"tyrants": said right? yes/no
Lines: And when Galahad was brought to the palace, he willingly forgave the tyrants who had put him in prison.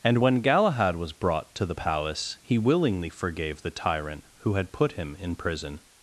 no